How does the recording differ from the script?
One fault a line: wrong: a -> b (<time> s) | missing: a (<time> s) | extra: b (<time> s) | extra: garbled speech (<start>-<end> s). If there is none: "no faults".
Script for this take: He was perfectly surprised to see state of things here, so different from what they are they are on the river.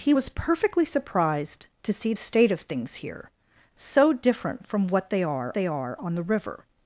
no faults